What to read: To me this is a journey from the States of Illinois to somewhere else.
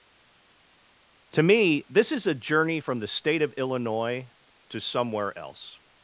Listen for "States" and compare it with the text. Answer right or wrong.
wrong